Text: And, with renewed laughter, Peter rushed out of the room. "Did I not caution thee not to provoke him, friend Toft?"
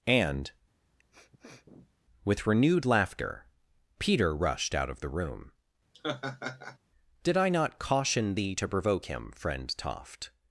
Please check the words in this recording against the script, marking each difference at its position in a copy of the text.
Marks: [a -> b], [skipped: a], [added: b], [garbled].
And, with renewed laughter, Peter rushed out of the room. "Did I not caution thee [skipped: not] to provoke him, friend Toft?"